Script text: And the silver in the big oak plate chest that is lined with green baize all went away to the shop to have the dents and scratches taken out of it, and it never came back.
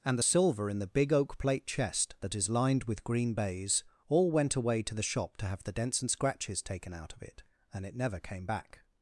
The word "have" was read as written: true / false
true